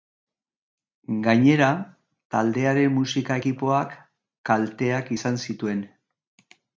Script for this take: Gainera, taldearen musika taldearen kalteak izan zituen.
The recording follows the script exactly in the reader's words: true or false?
false